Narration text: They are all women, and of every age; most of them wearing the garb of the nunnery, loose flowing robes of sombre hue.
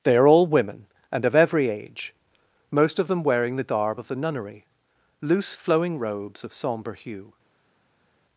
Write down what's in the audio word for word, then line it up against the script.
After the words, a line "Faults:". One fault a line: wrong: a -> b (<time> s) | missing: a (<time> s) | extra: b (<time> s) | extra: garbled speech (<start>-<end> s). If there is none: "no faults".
They are all women, and of every age; most of them wearing the garb of the nunnery, loose flowing robes of sombre hue.
Faults:
no faults